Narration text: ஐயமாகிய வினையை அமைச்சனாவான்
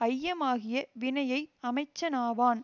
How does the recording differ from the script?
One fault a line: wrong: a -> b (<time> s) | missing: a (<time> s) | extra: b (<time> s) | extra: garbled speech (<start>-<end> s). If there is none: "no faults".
no faults